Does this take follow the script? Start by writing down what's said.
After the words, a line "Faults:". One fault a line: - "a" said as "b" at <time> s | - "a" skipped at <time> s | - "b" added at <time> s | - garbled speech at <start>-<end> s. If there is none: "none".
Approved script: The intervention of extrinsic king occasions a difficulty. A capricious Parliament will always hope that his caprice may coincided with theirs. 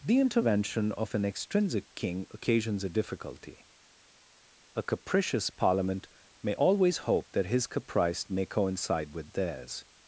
The intervention of an extrinsic king occasions a difficulty. A capricious Parliament may always hope that his caprice may coincide with theirs.
Faults:
- "an" added at 1.1 s
- "will" said as "may" at 6.4 s
- "coincided" said as "coincide" at 8.4 s